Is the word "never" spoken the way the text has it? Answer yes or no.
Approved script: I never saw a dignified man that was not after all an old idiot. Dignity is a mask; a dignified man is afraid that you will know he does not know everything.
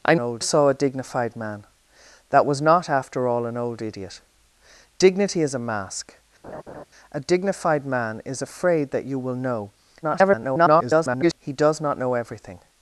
no